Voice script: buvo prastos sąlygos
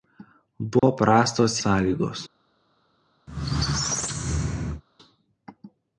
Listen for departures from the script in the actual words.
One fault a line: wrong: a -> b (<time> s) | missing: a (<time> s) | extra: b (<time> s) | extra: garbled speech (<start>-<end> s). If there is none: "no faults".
no faults